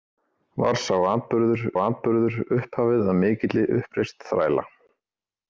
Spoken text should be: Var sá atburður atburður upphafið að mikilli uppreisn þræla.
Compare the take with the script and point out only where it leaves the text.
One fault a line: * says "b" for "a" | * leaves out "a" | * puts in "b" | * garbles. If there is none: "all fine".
all fine